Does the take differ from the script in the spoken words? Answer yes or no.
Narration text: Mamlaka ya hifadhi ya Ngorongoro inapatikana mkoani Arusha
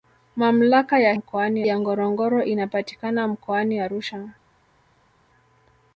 yes